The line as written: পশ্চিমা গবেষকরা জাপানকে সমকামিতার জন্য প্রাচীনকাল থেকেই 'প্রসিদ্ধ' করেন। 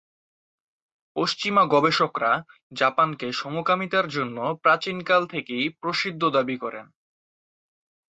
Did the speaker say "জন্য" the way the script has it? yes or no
yes